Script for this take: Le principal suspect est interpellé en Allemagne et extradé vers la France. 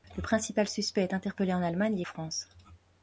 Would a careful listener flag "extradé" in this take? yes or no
yes